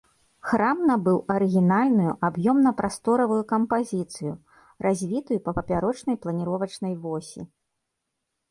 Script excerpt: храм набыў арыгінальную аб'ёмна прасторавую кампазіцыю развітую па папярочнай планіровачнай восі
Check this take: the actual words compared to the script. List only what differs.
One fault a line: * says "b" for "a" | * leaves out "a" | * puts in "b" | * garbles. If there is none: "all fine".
all fine